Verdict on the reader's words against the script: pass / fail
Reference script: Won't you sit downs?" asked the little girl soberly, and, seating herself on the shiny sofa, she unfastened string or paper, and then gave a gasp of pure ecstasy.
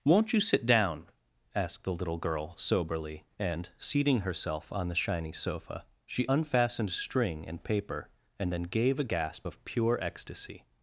fail